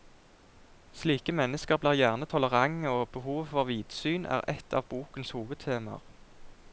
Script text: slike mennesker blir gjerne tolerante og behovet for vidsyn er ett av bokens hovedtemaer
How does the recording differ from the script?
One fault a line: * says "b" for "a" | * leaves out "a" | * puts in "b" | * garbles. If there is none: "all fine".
all fine